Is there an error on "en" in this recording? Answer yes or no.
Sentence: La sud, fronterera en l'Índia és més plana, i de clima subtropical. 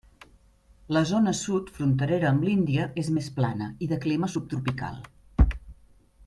yes